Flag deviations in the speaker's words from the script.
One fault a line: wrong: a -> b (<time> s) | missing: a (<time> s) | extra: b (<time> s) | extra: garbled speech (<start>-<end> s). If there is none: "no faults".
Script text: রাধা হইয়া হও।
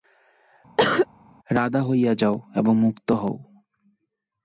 extra: যাও এবং মুক্ত (2.1 s)